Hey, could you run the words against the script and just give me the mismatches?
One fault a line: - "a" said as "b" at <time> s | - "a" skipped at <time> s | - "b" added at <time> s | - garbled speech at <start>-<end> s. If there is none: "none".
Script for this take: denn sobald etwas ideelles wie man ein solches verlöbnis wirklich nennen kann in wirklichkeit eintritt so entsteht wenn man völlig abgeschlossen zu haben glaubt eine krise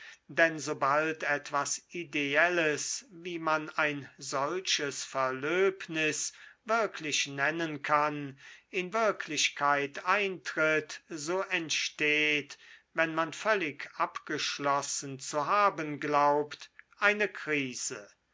none